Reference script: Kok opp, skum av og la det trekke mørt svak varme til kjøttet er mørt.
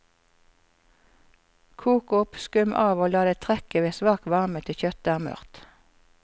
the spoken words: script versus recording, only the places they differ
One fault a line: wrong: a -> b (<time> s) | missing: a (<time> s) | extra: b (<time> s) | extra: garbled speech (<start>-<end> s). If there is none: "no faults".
wrong: mørt -> ved (3.9 s)